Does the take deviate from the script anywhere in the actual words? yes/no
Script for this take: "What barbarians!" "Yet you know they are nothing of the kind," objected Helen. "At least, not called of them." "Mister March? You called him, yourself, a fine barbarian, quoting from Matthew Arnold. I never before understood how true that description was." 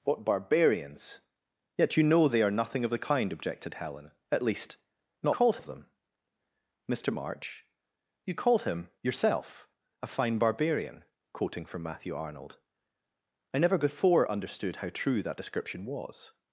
no